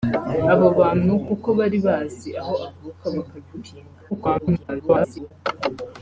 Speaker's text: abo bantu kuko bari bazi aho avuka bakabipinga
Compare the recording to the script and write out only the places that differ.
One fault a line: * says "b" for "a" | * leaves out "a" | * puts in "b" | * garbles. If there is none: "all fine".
* garbles